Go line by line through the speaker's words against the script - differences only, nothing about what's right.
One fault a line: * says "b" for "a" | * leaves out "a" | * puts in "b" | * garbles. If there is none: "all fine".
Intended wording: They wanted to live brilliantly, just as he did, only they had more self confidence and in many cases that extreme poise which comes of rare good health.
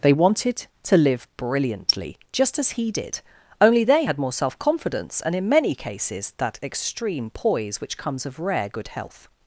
all fine